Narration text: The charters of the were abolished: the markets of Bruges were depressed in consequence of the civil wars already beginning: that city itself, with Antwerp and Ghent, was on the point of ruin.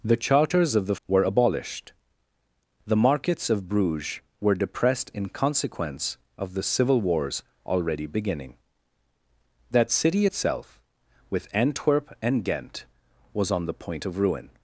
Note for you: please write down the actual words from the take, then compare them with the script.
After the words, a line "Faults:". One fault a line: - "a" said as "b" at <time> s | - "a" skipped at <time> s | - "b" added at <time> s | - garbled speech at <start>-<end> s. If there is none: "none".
The charters of the were abolished: the markets of Bruges were depressed in consequence of the civil wars already beginning: that city itself, with Antwerp and Ghent, was on the point of ruin.
Faults:
none